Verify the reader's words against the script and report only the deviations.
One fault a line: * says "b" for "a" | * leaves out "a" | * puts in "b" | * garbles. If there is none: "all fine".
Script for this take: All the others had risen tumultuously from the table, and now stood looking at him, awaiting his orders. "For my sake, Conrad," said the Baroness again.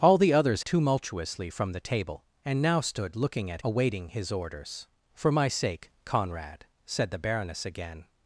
* leaves out "had risen"
* leaves out "him"